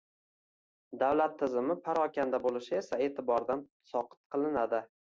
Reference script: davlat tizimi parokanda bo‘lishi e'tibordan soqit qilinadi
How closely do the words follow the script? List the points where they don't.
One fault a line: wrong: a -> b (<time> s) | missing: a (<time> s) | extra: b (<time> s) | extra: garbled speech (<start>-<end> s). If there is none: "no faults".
extra: esa (2.8 s)